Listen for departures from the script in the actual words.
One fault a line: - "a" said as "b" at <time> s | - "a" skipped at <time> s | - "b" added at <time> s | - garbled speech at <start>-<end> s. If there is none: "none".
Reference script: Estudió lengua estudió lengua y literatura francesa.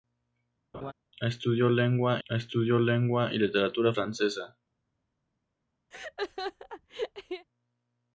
none